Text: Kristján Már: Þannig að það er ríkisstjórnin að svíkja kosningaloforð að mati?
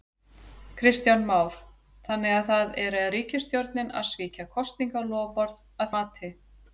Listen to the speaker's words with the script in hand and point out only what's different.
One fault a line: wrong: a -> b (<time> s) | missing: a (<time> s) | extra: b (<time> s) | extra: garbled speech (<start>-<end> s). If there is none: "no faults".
no faults